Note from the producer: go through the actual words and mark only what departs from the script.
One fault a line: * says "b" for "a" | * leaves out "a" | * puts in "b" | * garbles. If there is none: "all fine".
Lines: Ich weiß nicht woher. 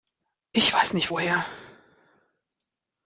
all fine